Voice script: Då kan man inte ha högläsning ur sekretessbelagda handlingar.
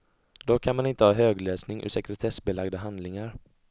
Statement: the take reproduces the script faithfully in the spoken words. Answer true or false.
true